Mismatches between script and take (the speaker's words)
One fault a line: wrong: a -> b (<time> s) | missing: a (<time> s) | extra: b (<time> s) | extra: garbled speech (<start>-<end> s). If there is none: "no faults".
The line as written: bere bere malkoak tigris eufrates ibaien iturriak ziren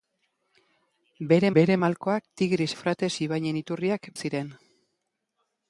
no faults